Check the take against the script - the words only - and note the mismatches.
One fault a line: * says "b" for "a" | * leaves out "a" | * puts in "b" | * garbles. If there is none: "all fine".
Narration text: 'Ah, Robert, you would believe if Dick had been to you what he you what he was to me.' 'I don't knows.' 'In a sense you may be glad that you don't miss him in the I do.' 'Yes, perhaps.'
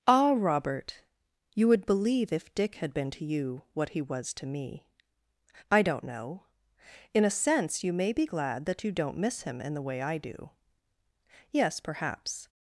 * leaves out "you what he"
* says "know" for "knows"
* puts in "way"